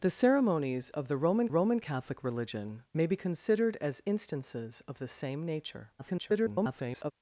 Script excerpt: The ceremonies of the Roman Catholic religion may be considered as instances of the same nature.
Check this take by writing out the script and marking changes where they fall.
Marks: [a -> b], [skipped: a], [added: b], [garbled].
The ceremonies of the Roman [added: Roman] Catholic religion may be considered as instances of the same nature. [garbled]